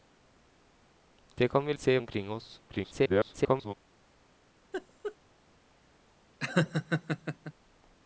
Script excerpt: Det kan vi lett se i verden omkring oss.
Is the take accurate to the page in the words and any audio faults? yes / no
no